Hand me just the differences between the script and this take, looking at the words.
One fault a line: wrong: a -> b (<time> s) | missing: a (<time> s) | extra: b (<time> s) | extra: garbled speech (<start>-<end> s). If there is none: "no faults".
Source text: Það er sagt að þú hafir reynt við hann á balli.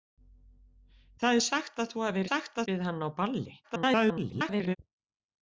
wrong: reynt -> sagt (2.3 s)
extra: garbled speech (3.6-4.8 s)